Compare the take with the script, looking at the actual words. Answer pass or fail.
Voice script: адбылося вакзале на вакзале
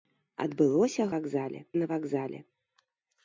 pass